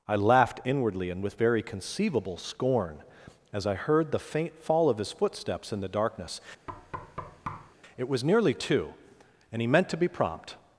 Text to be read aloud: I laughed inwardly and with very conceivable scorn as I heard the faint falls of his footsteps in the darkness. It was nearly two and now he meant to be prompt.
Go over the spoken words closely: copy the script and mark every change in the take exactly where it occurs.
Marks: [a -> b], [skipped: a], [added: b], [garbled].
I laughed inwardly and with very conceivable scorn as I heard the faint [falls -> fall] of his footsteps in the darkness. It was nearly two and [skipped: now] he meant to be prompt.